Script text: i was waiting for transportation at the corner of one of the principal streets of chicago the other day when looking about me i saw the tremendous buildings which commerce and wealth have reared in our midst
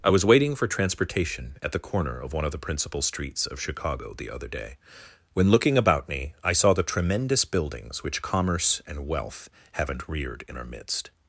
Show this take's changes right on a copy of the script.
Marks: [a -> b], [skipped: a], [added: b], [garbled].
i was waiting for transportation at the corner of one of the principal streets of chicago the other day when looking about me i saw the tremendous buildings which commerce and wealth [have -> haven't] reared in our midst